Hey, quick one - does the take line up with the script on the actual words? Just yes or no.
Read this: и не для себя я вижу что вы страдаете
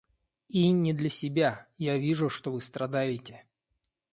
yes